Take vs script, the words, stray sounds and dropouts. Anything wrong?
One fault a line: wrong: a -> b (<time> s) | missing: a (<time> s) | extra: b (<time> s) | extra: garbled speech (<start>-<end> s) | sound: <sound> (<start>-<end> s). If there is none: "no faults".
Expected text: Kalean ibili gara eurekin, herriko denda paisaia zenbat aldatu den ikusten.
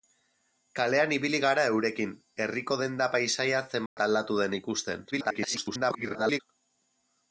sound: dropout (3.9-4.0 s)
extra: garbled speech (5.1-6.4 s)